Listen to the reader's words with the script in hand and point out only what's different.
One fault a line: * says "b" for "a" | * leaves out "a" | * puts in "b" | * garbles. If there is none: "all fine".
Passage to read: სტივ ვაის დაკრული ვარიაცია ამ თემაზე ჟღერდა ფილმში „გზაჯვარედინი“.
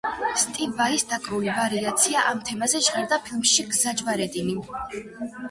all fine